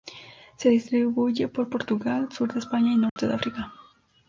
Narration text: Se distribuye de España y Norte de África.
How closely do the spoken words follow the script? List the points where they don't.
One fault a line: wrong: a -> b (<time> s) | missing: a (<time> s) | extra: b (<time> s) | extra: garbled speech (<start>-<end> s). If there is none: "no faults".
extra: por Portugal sur (1.5 s)